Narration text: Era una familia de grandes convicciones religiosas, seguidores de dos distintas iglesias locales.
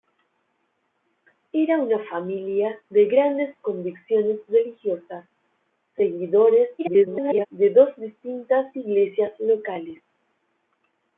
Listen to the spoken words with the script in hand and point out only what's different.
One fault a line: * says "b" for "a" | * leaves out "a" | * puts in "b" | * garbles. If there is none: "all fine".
* garbles